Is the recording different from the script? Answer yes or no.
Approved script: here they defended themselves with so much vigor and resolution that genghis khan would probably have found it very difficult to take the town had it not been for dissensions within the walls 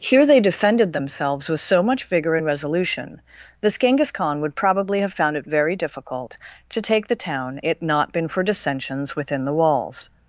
yes